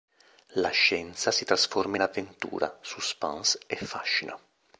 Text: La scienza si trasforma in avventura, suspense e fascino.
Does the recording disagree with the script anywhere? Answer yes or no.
no